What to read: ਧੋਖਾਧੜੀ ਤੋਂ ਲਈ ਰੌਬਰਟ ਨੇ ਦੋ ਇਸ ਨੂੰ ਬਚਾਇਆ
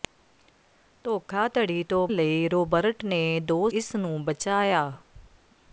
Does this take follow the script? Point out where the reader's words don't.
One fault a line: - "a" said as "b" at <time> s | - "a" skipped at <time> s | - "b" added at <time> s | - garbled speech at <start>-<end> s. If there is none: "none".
none